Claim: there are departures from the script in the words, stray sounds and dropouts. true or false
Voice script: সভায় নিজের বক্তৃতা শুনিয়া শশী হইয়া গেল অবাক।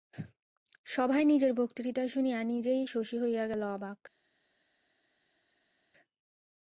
true